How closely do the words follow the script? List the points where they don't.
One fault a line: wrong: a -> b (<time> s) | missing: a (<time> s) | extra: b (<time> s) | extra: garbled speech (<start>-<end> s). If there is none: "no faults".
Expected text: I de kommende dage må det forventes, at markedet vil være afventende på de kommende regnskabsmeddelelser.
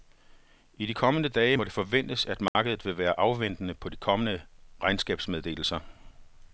no faults